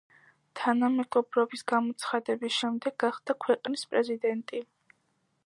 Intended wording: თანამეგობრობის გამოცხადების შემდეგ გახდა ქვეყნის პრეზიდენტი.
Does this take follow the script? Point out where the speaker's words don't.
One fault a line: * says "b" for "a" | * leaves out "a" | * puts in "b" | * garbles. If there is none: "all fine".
all fine